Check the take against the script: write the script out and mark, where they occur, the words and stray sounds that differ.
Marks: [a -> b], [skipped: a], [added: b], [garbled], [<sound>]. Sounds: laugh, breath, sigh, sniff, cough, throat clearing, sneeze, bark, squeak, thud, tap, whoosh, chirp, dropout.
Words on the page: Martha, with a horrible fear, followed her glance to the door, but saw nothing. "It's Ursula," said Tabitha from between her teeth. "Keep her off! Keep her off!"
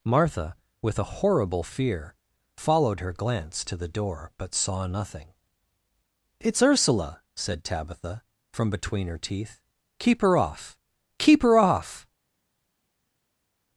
Martha, with a horrible fear, followed her glance to the door, but saw nothing. "It's Ursula," said Tabitha from between her teeth. "Keep her off! Keep her off!"